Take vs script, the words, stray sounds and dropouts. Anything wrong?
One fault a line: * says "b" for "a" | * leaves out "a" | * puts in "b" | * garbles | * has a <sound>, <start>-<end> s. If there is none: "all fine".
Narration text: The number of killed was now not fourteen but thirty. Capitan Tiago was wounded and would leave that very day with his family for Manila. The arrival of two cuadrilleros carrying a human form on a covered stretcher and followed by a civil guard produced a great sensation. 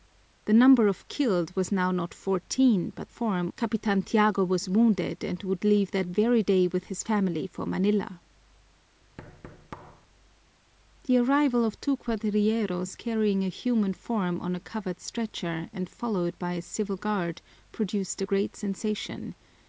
* says "form" for "thirty"
* has a thud, 9.2-10.1 s